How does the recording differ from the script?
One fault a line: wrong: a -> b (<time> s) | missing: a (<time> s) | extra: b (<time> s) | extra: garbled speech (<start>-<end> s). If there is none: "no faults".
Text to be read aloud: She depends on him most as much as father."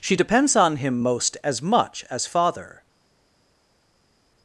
no faults